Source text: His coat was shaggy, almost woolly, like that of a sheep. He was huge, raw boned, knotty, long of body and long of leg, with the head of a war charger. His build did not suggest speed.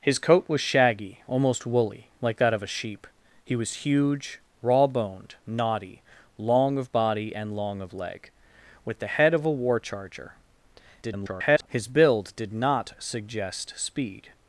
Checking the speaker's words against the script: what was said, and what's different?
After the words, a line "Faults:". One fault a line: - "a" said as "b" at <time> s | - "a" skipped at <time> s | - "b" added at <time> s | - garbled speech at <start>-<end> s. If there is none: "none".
His coat was shaggy, almost woolly, like that of a sheep. He was huge, raw boned, knotty, long of body and long of leg, with the head of a war charger. [garbled] His build did not suggest speed.
Faults:
- garbled speech at 11.0-11.7 s